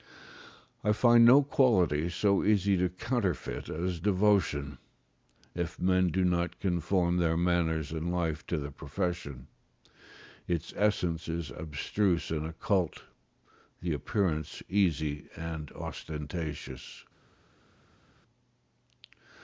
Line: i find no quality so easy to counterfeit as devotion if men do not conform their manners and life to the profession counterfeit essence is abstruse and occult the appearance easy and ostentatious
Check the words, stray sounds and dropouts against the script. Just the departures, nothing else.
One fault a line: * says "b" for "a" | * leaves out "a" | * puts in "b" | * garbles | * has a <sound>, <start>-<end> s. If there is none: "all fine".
* says "its" for "counterfeit"